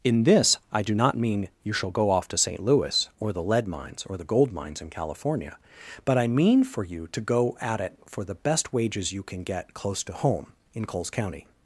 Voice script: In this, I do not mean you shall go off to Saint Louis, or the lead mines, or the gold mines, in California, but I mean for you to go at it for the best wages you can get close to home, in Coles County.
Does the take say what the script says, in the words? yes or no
yes